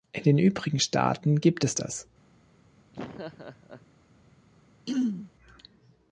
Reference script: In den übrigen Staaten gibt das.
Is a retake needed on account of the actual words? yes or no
yes